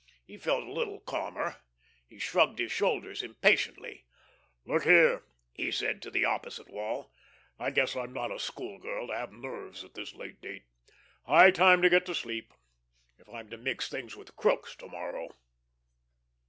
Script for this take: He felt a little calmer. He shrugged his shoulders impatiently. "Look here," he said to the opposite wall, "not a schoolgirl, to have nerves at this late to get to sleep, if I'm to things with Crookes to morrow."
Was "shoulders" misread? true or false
false